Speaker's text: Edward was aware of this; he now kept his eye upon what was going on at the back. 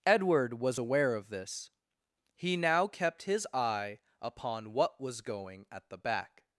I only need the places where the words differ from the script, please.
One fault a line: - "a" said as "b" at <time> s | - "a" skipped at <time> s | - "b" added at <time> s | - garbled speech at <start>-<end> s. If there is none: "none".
- "on" skipped at 5.7 s